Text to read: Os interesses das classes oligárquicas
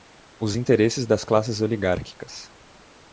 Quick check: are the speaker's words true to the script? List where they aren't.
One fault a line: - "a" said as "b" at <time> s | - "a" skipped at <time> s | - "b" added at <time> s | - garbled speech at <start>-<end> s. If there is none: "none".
none